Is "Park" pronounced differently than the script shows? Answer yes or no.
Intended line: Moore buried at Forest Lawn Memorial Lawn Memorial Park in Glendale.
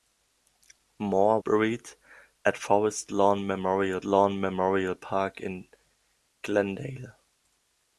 no